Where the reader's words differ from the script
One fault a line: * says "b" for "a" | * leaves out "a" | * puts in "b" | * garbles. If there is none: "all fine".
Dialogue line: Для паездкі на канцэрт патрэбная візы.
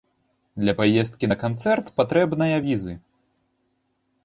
all fine